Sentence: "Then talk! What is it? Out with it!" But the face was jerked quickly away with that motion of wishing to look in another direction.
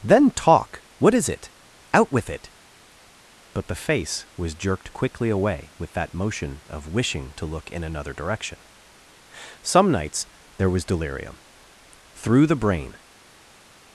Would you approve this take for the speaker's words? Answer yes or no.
no